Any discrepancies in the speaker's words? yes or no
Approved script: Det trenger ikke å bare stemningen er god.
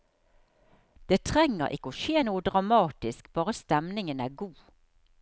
yes